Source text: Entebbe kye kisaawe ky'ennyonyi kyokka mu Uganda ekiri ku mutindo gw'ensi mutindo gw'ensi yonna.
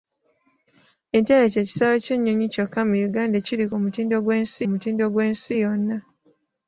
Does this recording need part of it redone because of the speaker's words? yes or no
no